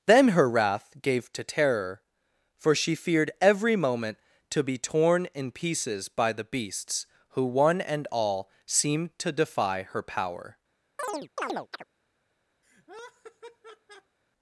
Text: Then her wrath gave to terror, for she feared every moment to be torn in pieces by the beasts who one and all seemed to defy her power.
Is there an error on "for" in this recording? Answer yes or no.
no